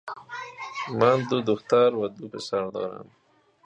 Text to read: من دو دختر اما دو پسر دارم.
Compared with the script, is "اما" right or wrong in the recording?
wrong